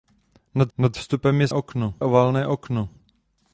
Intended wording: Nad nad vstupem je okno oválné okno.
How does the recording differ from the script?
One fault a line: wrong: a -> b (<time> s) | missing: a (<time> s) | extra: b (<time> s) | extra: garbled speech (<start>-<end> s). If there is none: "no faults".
no faults